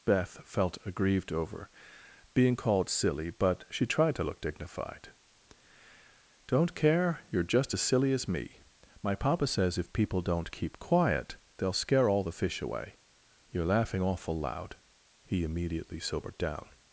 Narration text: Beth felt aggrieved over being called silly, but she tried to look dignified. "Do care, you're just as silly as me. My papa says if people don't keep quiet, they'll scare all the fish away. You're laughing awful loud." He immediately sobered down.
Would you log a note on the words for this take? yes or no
yes